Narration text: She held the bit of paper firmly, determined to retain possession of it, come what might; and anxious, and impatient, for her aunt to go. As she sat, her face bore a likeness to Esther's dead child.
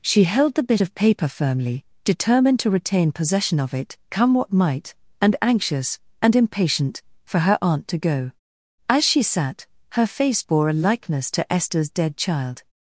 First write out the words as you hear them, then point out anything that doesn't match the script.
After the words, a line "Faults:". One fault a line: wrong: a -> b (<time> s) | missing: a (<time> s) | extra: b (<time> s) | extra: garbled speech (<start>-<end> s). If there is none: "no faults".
She held the bit of paper firmly, determined to retain possession of it, come what might; and anxious, and impatient, for her aunt to go. As she sat, her face bore a likeness to Esther's dead child.
Faults:
no faults